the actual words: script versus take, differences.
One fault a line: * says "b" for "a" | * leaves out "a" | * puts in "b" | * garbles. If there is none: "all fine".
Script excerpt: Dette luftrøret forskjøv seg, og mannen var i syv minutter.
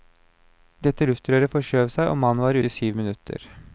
all fine